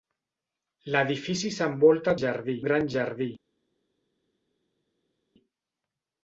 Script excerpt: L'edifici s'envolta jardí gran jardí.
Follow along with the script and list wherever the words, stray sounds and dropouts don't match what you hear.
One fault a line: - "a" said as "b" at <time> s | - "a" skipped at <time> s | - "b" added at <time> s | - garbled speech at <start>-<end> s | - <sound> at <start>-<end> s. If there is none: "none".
none